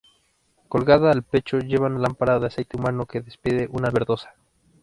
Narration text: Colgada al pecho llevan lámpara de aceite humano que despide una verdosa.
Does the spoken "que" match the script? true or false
true